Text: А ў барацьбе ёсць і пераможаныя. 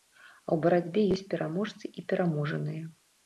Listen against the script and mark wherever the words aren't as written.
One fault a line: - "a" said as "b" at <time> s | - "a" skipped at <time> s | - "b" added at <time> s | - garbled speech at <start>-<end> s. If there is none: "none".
- "пераможцы" added at 1.3 s